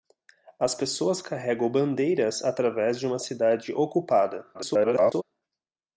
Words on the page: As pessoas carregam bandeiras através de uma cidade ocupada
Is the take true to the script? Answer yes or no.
no